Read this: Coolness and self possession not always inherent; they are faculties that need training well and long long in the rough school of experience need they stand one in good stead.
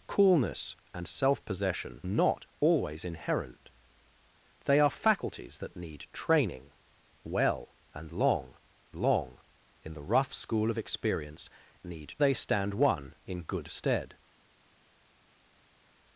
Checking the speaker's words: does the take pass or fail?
pass